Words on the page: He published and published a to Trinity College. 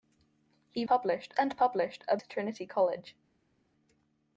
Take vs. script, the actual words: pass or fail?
pass